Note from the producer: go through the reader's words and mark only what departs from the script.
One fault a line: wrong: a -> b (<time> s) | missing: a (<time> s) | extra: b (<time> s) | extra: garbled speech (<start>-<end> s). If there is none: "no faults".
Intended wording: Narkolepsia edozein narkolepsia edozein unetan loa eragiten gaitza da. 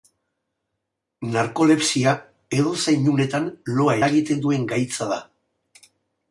missing: narkolepsia edozein (3.1 s)
extra: duen (4.5 s)